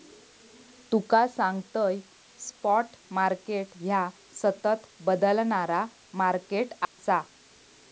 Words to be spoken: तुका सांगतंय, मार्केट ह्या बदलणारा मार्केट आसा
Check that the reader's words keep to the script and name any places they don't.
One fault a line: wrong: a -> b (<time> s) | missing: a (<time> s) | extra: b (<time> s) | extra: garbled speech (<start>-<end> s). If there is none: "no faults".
extra: स्पॉट (2.4 s)
extra: सतत (4.3 s)